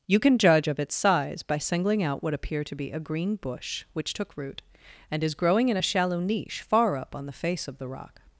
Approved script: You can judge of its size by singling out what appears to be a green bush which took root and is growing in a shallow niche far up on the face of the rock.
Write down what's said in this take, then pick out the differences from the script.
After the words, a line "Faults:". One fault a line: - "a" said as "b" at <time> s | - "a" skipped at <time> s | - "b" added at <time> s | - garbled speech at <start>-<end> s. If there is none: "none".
You can judge of its size by singling out what appear to be a green bush which took root and is growing in a shallow niche far up on the face of the rock.
Faults:
- "appears" said as "appear" at 2.3 s